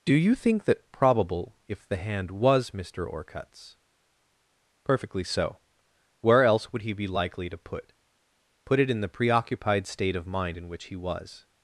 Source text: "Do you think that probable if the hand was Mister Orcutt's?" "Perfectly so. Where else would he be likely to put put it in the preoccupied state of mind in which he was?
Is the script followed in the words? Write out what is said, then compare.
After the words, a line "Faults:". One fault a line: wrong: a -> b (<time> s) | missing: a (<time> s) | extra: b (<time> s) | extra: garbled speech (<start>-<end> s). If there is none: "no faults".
"Do you think that probable if the hand was Mister Orcutt's?" "Perfectly so. Where else would he be likely to put put it in the preoccupied state of mind in which he was?
Faults:
no faults